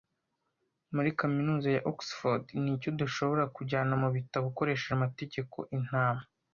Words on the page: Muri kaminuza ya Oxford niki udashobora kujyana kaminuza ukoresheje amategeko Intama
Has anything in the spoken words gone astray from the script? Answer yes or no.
yes